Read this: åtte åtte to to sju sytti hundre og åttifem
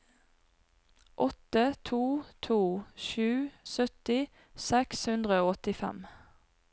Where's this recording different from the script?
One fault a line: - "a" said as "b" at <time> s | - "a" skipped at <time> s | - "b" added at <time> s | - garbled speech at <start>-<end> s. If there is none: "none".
- "åtte" skipped at 1.7 s
- "seks" added at 4.7 s